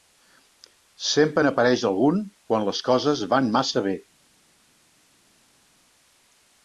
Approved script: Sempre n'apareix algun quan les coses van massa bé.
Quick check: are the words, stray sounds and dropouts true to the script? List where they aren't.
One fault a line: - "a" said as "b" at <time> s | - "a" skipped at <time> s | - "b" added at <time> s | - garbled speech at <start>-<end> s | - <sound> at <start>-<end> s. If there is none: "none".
none